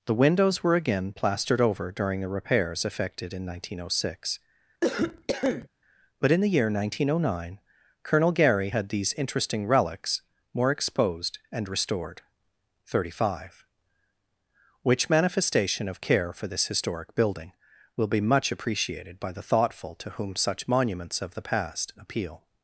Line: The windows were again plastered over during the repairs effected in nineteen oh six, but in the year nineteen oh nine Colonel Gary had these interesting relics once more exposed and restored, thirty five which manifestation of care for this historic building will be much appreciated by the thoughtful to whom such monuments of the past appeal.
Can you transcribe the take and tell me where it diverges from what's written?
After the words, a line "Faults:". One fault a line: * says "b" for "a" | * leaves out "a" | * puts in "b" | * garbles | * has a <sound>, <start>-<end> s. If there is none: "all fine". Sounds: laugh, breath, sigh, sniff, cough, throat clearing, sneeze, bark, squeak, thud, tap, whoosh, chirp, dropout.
The windows were again plastered over during the repairs effected in nineteen oh six, but in the year nineteen oh nine Colonel Gary had these interesting relics more exposed and restored, thirty five which manifestation of care for this historic building will be much appreciated by the thoughtful to whom such monuments of the past appeal.
Faults:
* has a cough, 4.8-5.7 s
* leaves out "once"